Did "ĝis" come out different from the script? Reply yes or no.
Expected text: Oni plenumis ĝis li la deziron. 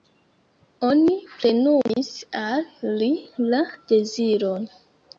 yes